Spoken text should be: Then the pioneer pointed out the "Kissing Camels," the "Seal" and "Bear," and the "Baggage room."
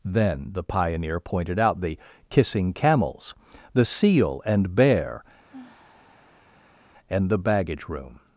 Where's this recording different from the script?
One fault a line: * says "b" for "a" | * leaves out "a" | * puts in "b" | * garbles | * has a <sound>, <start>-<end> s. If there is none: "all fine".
* has a sigh, 5.5-6.8 s